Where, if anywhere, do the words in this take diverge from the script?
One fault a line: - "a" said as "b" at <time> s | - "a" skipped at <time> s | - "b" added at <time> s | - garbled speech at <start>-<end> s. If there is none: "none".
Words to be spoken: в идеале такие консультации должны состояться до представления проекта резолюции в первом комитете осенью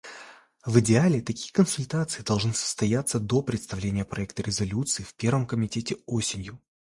none